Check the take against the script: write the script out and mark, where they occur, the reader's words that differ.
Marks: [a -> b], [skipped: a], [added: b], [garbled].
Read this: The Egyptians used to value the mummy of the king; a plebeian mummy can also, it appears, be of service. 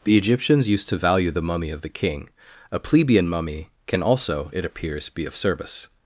The Egyptians used to value the mummy of the king; a plebeian mummy can also, it appears, be of service.